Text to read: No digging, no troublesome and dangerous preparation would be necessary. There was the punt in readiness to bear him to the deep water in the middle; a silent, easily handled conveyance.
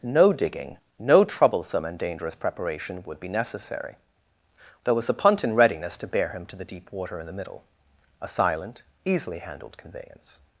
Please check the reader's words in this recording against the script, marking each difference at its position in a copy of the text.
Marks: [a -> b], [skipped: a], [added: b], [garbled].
No digging, no troublesome and dangerous preparation would be necessary. There was the punt in readiness to bear him to the deep water in the middle; a silent, easily handled conveyance.